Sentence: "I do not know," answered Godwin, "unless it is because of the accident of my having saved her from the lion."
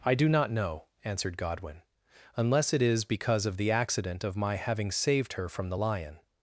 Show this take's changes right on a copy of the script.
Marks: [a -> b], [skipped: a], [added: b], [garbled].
"I do not know," answered Godwin, "unless it is because of the accident of my having saved her from the lion."